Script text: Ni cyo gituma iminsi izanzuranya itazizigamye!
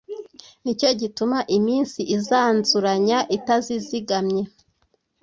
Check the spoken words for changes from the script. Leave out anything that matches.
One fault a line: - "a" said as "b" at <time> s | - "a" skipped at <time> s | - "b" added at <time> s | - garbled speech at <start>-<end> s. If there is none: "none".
none